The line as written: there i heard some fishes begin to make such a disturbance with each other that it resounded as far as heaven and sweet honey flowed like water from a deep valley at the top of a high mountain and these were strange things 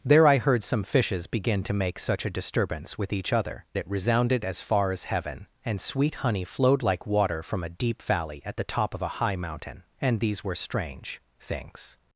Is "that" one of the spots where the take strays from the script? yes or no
yes